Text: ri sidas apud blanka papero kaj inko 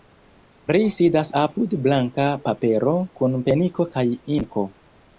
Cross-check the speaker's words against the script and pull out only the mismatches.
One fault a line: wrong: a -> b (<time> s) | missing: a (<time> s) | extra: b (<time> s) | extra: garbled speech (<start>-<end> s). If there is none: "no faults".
extra: kun peniko (3.2 s)